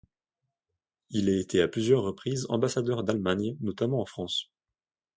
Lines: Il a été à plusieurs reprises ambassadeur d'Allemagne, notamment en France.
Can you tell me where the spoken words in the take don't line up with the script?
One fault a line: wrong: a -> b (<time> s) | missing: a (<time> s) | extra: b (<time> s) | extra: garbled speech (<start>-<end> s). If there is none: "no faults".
no faults